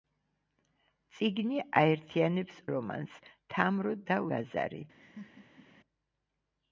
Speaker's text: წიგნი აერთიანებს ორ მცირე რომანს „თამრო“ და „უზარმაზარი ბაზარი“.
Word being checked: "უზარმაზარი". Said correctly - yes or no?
no